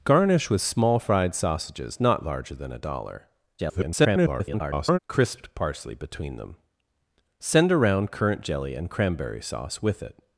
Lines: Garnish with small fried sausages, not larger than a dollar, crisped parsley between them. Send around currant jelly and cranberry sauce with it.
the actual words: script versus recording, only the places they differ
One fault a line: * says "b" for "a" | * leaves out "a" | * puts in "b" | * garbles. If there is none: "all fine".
* garbles